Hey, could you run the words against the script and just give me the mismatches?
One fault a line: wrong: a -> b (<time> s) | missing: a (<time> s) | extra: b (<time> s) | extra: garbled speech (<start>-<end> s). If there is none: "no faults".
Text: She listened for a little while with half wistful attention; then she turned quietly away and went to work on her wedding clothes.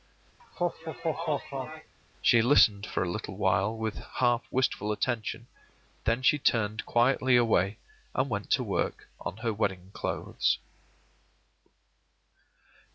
no faults